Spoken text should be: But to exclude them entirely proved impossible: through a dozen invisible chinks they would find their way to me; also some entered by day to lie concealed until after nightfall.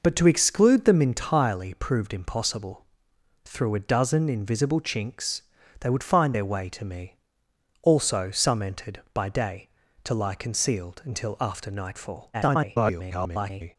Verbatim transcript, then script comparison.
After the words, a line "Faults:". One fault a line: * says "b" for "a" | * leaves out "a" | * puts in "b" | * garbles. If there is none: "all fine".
But to exclude them entirely proved impossible: through a dozen invisible chinks they would find their way to me; also some entered by day to lie concealed until after nightfall. [garbled]
Faults:
* garbles